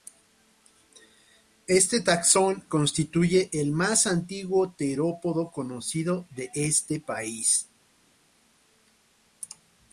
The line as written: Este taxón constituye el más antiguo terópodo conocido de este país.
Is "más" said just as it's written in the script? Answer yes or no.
yes